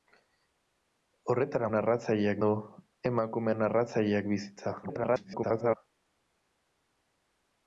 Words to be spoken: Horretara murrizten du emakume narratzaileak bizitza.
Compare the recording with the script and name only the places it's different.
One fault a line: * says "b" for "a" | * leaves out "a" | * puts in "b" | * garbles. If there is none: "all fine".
* says "narratzaileak" for "murrizten"
* garbles